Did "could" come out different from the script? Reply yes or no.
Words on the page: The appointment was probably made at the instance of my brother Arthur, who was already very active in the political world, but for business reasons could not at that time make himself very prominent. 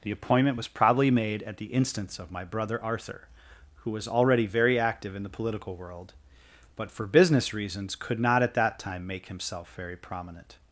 no